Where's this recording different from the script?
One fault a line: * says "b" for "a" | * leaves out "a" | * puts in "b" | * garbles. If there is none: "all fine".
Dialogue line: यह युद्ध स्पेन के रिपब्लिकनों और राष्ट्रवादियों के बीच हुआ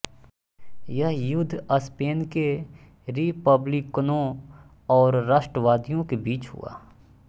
all fine